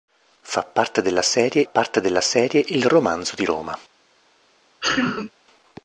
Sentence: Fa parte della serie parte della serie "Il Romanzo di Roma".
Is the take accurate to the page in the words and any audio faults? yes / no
no